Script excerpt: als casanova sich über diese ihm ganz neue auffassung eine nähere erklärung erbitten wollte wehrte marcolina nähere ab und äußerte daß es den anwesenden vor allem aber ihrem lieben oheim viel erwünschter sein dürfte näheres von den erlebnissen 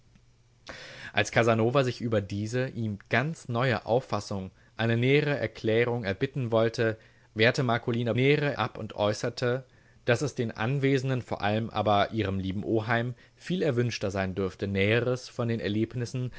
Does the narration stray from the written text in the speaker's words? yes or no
no